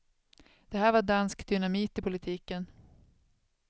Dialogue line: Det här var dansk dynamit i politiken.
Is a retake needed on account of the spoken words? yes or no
no